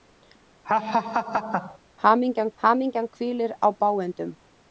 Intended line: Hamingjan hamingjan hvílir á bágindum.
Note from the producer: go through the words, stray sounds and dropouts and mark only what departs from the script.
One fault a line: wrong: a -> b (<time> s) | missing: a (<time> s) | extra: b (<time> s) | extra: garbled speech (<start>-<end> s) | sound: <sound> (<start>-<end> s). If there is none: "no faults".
sound: laugh (0.6-1.8 s)